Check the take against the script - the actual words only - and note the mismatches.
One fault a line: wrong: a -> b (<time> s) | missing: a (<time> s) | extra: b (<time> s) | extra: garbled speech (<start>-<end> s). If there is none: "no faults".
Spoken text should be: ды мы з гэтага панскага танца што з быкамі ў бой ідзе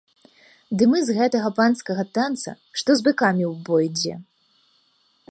no faults